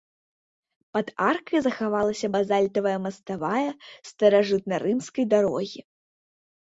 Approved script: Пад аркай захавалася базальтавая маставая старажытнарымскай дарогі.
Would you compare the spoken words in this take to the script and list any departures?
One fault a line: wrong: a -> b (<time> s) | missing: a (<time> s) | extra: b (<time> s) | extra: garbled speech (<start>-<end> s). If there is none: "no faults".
no faults